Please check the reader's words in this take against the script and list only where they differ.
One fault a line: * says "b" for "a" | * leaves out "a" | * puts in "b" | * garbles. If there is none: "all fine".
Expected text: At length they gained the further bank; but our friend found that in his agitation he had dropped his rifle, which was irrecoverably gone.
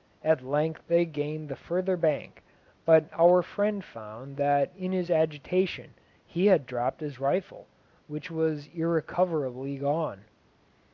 all fine